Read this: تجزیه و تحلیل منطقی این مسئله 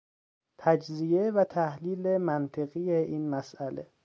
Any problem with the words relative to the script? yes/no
no